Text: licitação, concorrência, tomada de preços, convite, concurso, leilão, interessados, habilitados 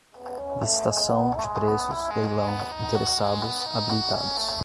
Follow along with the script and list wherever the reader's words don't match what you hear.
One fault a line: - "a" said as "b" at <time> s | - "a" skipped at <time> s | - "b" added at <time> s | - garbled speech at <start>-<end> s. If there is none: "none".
- "concorrência tomada" skipped at 1.3 s
- "convite concurso" skipped at 2.0 s